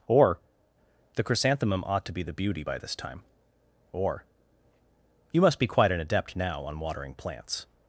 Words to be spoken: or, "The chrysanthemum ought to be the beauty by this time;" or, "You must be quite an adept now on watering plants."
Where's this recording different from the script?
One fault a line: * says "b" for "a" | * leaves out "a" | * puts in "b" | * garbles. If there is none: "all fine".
all fine